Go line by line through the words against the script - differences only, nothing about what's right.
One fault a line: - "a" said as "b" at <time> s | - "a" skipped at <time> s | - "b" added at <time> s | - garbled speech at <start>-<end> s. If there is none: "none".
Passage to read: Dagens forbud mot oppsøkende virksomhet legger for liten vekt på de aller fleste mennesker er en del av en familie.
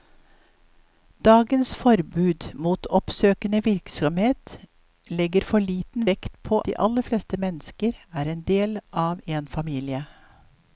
none